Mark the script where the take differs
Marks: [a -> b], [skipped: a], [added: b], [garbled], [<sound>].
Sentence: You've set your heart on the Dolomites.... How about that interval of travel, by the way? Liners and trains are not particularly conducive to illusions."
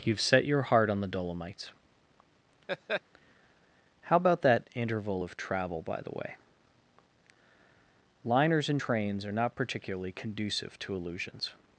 You've set your heart on the Dolomites.... [laugh] How about that interval of travel, by the way? Liners and trains are not particularly conducive to illusions."